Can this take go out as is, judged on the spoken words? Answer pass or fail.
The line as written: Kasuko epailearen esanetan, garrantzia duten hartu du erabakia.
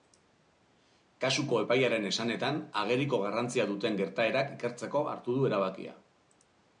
fail